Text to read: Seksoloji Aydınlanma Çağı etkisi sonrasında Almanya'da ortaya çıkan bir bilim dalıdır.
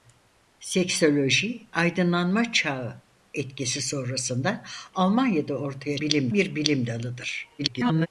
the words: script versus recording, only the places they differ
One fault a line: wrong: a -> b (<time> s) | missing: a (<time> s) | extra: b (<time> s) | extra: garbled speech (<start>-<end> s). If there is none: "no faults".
wrong: çıkan -> bilim (6.0 s)
extra: garbled speech (7.6-8.1 s)